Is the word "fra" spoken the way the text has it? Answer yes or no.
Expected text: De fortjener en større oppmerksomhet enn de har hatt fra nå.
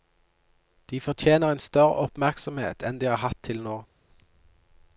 no